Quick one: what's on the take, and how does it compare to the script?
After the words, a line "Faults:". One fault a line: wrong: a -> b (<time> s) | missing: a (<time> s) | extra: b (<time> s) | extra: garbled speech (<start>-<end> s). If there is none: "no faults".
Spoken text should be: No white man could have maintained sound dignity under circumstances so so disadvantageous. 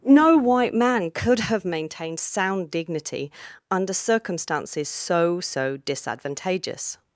No white man could have maintained sound dignity under circumstances so so disadvantageous.
Faults:
no faults